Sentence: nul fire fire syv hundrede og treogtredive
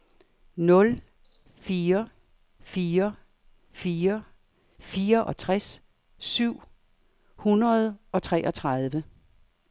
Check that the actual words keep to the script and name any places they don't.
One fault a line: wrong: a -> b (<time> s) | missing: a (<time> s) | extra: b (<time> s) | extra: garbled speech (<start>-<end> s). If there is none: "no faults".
extra: fire fireogtres (3.7 s)